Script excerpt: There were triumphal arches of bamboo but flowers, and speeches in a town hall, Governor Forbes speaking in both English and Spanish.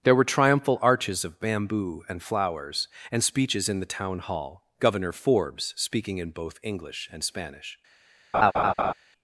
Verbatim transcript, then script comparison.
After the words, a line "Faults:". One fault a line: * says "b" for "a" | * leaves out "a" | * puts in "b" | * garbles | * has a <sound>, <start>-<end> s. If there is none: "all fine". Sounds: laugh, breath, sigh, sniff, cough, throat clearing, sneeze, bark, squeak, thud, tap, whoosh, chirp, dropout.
There were triumphal arches of bamboo and flowers, and speeches in the town hall, Governor Forbes speaking in both English and Spanish.
Faults:
* says "and" for "but"
* says "the" for "a"
* has a laugh, 8.3-8.9 s